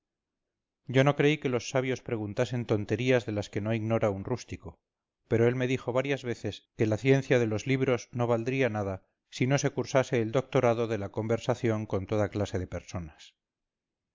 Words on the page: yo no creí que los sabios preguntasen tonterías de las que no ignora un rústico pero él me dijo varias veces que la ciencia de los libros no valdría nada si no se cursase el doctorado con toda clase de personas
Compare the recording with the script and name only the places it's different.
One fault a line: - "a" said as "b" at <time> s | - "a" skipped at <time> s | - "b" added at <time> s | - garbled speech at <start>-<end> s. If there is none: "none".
- "de la conversación" added at 10.9 s